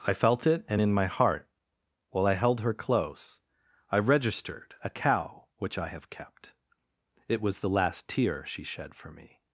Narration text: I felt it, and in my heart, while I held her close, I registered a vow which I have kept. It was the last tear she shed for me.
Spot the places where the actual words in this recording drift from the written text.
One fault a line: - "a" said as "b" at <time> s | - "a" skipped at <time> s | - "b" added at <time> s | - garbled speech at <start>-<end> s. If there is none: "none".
- "vow" said as "cow" at 4.9 s